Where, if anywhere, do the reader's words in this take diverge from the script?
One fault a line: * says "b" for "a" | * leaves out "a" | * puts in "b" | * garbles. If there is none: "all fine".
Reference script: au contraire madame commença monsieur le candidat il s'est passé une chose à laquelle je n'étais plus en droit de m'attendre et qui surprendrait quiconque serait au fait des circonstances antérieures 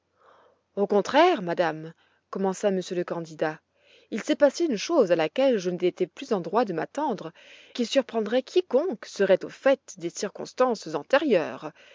* leaves out "et"